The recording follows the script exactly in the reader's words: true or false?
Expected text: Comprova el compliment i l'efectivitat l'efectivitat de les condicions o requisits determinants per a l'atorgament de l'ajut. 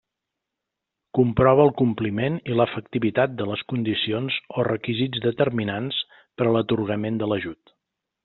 false